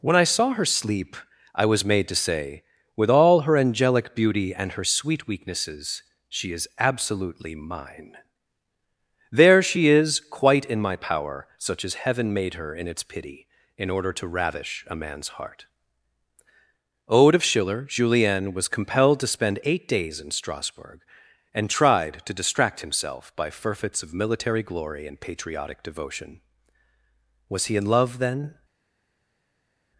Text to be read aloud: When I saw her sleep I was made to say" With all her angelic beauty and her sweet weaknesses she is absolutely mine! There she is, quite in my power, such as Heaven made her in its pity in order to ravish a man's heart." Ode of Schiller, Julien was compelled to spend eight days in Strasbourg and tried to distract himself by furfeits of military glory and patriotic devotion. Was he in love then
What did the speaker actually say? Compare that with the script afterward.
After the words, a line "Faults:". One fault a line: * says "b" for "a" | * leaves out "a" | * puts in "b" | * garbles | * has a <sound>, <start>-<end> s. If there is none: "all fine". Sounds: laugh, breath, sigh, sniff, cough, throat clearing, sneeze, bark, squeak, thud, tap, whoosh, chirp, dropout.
When I saw her sleep I was made to say" With all her angelic beauty and her sweet weaknesses she is absolutely mine! There she is, quite in my power, such as Heaven made her in its pity in order to ravish a man's heart." Ode of Schiller, Julien was compelled to spend eight days in Strasbourg and tried to distract himself by furfeits of military glory and patriotic devotion. Was he in love then
Faults:
all fine